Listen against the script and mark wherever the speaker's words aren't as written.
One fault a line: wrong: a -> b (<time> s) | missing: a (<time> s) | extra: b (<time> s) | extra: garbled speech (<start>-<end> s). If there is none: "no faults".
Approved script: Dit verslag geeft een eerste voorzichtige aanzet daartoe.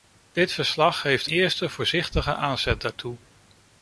missing: een (1.3 s)